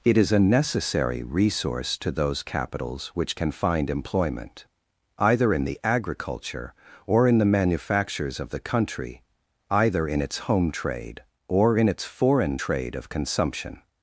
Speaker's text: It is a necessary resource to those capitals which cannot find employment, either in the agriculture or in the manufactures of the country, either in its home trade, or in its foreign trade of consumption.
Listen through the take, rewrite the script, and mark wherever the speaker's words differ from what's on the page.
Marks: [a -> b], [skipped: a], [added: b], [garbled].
It is a necessary resource to those capitals which [cannot -> can] find employment, either in the agriculture or in the manufactures of the country, either in its home trade, or in its foreign trade of consumption.